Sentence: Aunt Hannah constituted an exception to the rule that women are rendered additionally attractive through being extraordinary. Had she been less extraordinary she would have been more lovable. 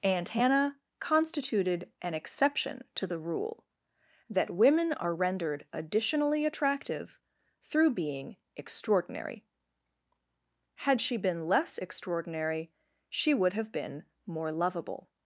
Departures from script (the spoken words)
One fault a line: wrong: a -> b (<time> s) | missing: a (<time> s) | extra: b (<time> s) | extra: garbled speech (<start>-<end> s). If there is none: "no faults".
no faults